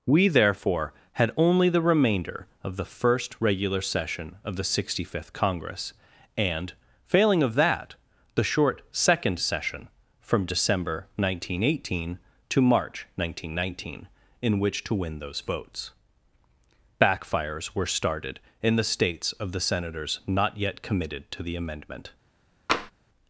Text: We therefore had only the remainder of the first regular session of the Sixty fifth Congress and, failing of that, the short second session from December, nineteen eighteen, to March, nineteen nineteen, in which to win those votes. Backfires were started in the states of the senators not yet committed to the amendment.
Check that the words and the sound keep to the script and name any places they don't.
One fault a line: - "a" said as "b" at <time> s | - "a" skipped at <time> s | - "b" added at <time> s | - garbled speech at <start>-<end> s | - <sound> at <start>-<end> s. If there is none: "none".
- tap at 22.7-22.9 s